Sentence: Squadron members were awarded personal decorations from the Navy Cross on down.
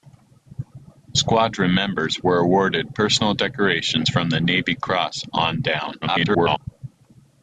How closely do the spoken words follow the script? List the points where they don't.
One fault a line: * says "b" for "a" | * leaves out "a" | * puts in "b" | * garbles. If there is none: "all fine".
* garbles